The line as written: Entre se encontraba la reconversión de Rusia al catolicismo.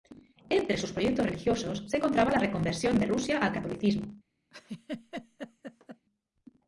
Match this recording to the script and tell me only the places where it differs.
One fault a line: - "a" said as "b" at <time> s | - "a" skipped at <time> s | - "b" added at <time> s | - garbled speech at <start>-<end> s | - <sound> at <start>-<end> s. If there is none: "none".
- "sus proyectos religiosos" added at 0.8 s
- laugh at 4.5-6.1 s